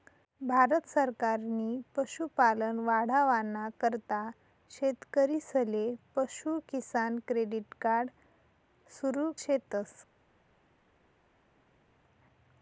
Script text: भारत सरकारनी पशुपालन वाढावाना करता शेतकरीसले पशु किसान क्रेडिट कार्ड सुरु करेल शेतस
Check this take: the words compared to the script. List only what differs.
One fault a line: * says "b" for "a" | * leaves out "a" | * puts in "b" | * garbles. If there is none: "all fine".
* leaves out "करेल"